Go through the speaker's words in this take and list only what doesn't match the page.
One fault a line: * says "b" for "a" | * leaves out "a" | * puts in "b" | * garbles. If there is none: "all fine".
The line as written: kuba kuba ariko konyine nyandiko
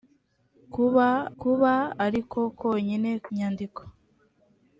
all fine